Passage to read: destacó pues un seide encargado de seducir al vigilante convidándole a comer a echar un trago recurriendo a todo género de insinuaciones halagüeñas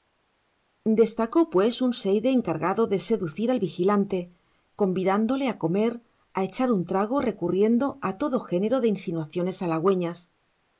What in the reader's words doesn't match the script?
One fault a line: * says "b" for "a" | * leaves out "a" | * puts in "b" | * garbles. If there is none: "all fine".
all fine